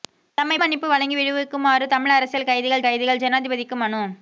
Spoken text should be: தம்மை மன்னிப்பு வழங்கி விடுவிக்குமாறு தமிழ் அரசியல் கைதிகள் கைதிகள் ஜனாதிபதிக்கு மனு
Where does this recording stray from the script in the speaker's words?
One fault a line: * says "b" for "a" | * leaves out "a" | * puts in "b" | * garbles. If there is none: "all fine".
all fine